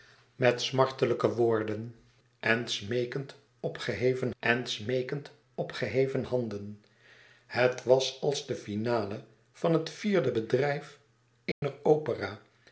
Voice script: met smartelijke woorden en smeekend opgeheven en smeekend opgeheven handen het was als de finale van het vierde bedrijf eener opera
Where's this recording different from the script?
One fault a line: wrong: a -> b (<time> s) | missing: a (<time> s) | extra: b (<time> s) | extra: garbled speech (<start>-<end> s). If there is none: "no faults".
no faults